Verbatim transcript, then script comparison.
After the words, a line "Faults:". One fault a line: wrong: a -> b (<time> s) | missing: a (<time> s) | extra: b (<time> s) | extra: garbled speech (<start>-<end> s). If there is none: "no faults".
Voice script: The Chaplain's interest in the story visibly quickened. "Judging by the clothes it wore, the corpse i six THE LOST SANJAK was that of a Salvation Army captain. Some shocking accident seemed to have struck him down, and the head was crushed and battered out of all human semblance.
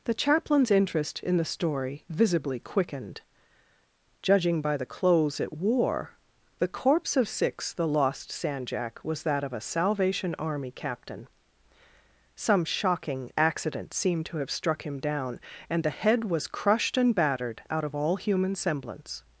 The Chaplain's interest in the story visibly quickened. "Judging by the clothes it wore, the corpse of six THE LOST SANJAK was that of a Salvation Army captain. Some shocking accident seemed to have struck him down, and the head was crushed and battered out of all human semblance.
Faults:
wrong: i -> of (7.2 s)